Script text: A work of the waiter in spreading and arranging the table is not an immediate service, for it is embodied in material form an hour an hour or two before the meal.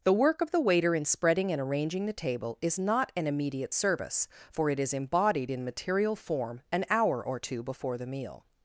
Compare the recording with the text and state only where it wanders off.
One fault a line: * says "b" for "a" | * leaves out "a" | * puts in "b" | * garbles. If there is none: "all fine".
* says "The" for "A"
* leaves out "an hour"